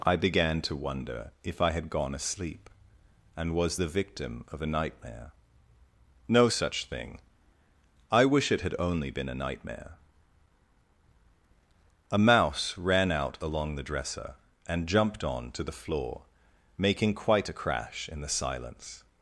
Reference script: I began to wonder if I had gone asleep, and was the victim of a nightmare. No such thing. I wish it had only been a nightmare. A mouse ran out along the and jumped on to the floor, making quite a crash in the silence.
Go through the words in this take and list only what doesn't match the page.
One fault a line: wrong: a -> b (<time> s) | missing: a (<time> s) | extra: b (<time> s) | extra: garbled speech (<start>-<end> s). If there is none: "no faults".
extra: dresser (13.8 s)